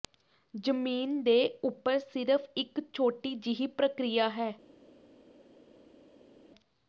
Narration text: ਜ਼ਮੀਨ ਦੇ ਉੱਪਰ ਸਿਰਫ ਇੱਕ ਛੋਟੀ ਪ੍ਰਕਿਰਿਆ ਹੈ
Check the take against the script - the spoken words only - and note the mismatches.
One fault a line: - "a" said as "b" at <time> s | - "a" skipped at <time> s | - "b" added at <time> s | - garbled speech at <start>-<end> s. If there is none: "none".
- "ਜਿਹੀ" added at 3.4 s